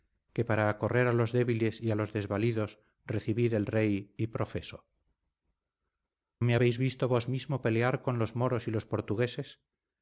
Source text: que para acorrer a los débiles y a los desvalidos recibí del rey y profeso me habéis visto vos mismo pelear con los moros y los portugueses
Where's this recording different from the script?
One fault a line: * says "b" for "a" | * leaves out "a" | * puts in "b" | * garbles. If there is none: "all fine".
all fine